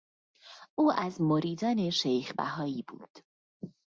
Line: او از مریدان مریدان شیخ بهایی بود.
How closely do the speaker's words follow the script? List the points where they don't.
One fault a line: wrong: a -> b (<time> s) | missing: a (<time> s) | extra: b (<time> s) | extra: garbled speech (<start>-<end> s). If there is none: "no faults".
missing: مریدان (1.9 s)